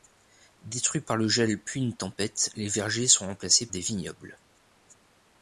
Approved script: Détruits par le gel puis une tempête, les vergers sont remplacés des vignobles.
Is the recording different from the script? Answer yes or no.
no